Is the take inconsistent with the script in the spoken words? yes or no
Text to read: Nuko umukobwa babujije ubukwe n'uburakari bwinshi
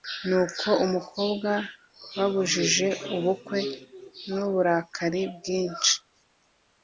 no